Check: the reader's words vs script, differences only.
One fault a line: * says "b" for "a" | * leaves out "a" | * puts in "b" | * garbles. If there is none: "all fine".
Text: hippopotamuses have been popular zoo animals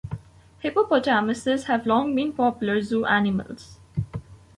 * puts in "long"